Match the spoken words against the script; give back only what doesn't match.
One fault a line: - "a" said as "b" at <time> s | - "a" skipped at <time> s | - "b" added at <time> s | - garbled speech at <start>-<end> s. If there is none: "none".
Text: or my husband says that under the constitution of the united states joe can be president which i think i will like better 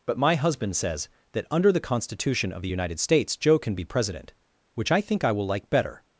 - "or" said as "but" at 0.1 s